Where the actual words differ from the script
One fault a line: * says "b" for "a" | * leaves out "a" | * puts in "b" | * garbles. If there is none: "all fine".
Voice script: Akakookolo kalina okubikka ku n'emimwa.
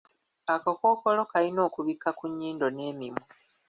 * puts in "nnyindo"